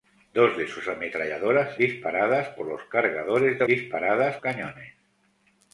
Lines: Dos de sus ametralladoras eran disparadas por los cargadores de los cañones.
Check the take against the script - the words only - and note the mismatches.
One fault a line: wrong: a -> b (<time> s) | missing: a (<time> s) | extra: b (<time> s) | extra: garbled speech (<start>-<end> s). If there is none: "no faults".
missing: eran (1.8 s)
wrong: los -> disparadas (3.7 s)